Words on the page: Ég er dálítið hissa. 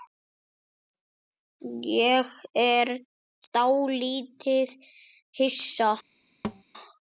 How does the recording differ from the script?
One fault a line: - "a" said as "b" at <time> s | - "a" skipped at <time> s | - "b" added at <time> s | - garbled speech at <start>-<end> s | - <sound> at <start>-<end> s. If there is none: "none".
- thud at 6.4-6.6 s